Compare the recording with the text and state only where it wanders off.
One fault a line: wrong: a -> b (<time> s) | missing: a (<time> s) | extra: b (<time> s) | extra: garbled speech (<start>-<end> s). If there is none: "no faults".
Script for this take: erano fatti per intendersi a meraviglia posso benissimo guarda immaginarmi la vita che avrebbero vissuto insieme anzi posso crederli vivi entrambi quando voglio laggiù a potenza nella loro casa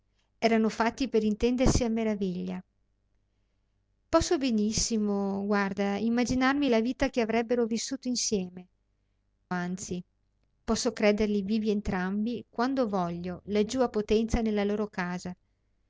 no faults